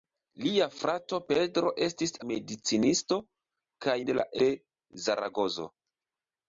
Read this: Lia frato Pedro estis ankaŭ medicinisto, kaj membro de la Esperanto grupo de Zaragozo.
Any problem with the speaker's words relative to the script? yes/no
yes